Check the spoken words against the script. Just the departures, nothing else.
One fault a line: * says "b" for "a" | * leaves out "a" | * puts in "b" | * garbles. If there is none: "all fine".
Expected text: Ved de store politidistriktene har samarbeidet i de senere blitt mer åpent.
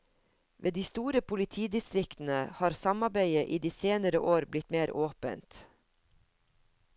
* puts in "år"